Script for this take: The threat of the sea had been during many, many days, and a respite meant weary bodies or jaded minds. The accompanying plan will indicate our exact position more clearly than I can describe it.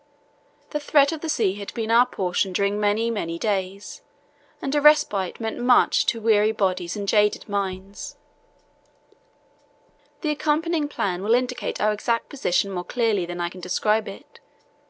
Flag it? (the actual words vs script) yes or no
yes